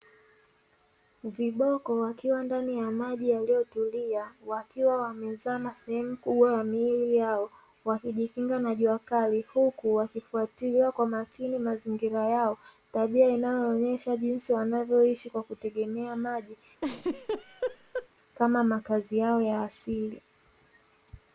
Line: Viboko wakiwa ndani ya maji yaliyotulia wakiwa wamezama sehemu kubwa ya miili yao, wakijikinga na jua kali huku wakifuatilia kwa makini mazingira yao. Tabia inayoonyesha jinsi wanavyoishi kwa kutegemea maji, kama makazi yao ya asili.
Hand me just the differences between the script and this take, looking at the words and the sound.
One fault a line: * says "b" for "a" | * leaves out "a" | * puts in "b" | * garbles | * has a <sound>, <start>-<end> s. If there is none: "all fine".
* has a laugh, 16.8-18.1 s